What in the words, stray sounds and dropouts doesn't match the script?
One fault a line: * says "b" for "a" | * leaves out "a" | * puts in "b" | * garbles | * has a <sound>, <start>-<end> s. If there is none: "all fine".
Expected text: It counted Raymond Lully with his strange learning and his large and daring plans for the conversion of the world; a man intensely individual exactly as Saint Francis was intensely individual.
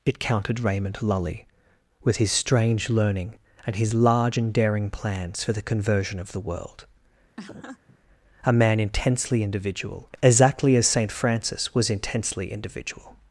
* has a laugh, 7.4-8.0 s